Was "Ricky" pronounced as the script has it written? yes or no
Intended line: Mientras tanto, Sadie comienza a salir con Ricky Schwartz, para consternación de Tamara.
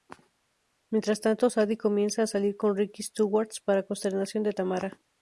yes